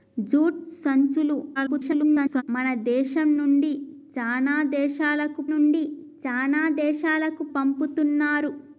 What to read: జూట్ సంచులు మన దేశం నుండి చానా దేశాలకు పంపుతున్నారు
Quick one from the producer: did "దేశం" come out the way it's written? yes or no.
yes